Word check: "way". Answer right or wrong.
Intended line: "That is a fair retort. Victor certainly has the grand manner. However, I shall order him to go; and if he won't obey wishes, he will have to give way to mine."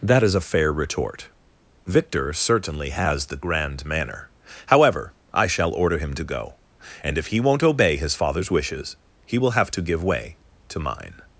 right